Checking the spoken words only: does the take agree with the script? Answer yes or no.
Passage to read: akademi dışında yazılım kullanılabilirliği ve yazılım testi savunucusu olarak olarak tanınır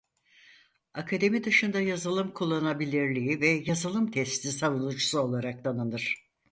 no